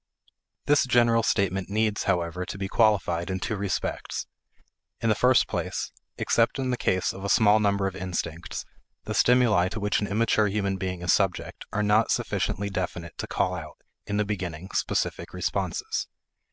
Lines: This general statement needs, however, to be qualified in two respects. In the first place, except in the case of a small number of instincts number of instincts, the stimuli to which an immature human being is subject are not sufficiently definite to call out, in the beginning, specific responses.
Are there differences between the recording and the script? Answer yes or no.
yes